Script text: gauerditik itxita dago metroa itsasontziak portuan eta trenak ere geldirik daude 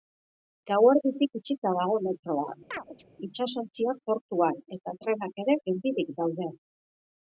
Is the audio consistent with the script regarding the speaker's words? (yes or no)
yes